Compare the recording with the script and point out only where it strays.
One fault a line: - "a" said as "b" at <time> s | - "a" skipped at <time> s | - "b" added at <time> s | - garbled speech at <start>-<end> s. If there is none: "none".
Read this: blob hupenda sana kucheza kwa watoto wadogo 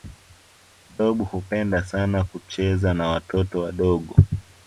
- "kwa" said as "na" at 2.9 s